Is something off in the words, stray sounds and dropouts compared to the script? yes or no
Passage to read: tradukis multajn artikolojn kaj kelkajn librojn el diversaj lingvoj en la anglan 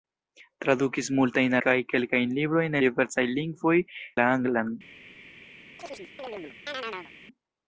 yes